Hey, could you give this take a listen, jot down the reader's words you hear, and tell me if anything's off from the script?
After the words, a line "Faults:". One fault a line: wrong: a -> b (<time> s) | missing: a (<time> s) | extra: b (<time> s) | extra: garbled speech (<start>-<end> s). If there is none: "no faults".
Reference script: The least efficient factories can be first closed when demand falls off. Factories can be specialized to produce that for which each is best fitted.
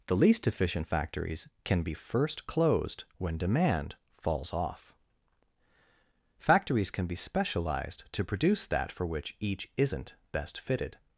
The least efficient factories can be first closed when demand falls off. Factories can be specialized to produce that for which each isn't best fitted.
Faults:
wrong: is -> isn't (9.7 s)